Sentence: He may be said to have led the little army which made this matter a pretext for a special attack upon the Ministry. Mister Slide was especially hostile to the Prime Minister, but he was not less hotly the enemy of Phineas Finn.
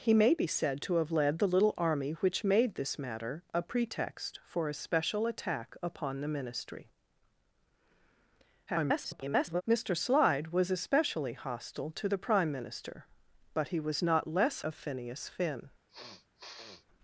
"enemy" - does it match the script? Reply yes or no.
no